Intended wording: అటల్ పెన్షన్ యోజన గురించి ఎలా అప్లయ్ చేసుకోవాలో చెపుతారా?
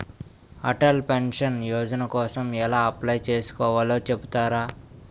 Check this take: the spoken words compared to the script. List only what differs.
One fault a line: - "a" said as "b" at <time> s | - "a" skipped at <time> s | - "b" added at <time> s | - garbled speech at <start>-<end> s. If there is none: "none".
- "గురించి" said as "కోసం" at 2.1 s